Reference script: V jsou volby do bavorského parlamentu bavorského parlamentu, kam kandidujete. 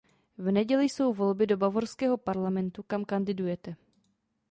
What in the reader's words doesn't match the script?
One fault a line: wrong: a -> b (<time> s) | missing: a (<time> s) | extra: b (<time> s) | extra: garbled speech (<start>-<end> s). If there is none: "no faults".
extra: neděli (0.5 s)
missing: bavorského parlamentu (2.8 s)